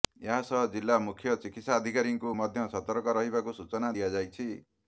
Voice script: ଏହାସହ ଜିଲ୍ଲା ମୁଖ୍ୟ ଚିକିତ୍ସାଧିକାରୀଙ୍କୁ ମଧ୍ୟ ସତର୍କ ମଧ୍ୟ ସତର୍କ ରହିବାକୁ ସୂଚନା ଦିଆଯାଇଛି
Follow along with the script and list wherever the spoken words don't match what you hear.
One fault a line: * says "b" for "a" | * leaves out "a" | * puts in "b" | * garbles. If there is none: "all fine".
* leaves out "ମଧ୍ୟ ସତର୍କ"